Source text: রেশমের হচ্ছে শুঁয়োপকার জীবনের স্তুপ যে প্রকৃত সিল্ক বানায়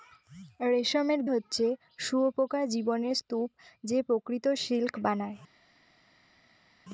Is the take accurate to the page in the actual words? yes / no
yes